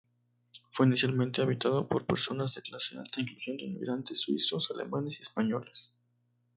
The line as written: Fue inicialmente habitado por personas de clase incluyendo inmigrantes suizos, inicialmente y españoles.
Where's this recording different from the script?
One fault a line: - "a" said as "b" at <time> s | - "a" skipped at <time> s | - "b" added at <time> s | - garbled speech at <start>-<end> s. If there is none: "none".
- "alta" added at 3.0 s
- "inicialmente" said as "alemanes" at 4.7 s